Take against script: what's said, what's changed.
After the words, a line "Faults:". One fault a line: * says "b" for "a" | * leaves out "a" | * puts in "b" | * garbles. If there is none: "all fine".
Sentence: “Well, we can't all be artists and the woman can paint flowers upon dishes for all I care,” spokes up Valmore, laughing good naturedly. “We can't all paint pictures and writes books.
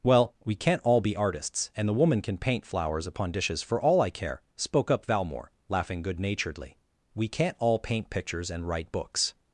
“Well, we can't all be artists and the woman can paint flowers upon dishes for all I care,” spoke up Valmore, laughing good naturedly. “We can't all paint pictures and write books.
Faults:
* says "spoke" for "spokes"
* says "write" for "writes"